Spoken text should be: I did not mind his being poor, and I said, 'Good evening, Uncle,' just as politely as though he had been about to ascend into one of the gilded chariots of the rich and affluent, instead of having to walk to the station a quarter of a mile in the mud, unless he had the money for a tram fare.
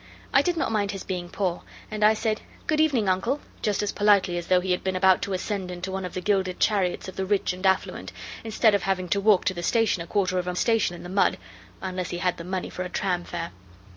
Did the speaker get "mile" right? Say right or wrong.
wrong